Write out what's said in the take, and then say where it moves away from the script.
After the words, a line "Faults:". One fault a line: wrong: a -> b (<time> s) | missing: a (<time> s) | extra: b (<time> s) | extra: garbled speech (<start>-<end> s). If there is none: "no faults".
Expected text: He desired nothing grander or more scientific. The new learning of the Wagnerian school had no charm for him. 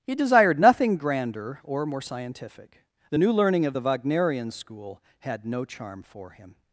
He desired nothing grander or more scientific. The new learning of the Wagnerian school had no charm for him.
Faults:
no faults